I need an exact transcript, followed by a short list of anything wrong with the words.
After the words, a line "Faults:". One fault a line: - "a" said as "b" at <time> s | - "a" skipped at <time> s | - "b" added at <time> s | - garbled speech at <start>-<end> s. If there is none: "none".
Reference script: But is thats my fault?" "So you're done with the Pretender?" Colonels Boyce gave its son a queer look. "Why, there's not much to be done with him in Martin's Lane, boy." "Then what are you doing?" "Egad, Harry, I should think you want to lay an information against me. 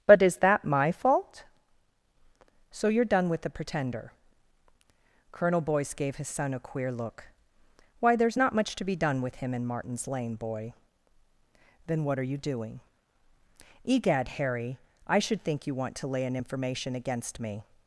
But is that my fault?" "So you're done with the Pretender?" Colonel Boyce gave his son a queer look. "Why, there's not much to be done with him in Martin's Lane, boy." "Then what are you doing?" "Egad, Harry, I should think you want to lay an information against me.
Faults:
- "thats" said as "that" at 0.4 s
- "Colonels" said as "Colonel" at 5.3 s
- "its" said as "his" at 6.2 s